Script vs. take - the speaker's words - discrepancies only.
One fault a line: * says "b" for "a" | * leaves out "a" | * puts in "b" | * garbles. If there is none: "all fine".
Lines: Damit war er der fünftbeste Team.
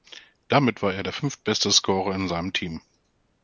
* puts in "Scorer in seinem"